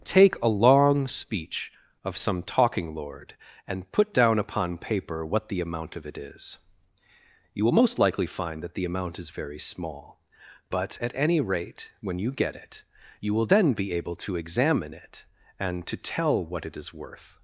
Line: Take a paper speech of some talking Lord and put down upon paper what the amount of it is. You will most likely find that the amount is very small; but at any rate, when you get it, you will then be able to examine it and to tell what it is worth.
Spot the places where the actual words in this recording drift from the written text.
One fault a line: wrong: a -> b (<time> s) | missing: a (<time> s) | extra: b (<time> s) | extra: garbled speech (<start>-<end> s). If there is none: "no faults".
wrong: paper -> long (0.5 s)